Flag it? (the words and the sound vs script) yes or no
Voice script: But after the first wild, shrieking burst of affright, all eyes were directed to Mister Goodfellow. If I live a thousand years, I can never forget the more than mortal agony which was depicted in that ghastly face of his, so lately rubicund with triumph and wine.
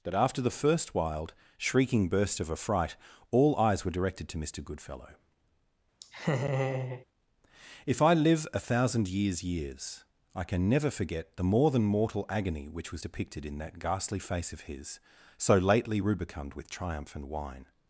yes